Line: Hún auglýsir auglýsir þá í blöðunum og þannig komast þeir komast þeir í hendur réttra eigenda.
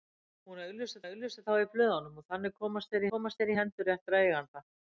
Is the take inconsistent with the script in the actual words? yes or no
no